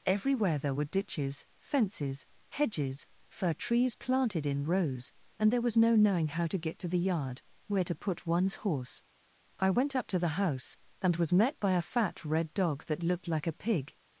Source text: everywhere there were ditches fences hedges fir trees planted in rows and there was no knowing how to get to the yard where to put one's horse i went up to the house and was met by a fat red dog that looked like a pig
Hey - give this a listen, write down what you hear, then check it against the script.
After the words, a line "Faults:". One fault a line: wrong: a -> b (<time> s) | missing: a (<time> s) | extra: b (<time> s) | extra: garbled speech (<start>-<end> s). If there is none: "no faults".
everywhere there were ditches fences hedges fir trees planted in rows and there was no knowing how to get to the yard where to put one's horse i went up to the house and was met by a fat red dog that looked like a pig
Faults:
no faults